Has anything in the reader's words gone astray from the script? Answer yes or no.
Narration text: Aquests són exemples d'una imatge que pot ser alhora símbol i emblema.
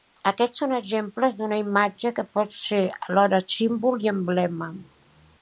no